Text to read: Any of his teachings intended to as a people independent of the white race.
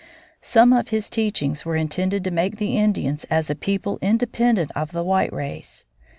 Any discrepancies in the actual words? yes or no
yes